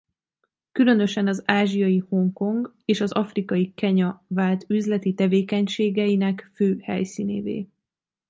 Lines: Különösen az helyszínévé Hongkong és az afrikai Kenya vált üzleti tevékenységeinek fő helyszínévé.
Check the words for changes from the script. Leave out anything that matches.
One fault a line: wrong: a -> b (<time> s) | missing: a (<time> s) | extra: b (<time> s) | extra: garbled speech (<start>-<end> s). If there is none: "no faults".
wrong: helyszínévé -> ázsiai (1.4 s)